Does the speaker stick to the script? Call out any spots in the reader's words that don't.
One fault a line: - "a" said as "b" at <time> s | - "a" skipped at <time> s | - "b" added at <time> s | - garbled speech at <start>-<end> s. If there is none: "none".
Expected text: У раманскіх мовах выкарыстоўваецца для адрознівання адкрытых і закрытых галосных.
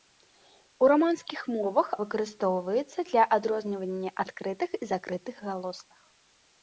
none